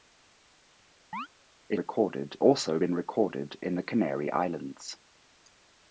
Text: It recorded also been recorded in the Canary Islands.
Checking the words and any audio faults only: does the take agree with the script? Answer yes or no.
no